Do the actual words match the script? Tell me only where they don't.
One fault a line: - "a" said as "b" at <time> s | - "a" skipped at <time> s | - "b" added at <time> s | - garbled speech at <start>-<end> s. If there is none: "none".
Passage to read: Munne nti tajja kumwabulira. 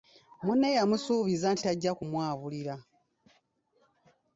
- "yamusuubiza" added at 0.8 s